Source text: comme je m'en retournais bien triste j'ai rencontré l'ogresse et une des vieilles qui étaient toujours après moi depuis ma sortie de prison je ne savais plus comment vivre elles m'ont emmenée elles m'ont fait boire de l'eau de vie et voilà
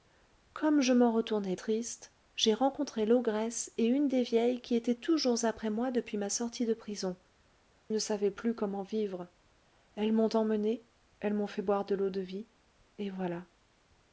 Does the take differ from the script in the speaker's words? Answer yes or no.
yes